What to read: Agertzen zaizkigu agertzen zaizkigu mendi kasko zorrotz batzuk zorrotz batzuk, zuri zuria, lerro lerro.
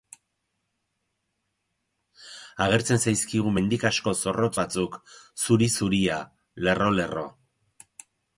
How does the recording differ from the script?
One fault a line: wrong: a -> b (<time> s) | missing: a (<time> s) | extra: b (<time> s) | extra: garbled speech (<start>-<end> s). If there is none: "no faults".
missing: agertzen zaizkigu (3.5 s)
missing: zorrotz batzuk (5.0 s)